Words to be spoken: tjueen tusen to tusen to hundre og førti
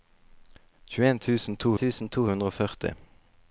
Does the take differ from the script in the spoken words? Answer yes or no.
no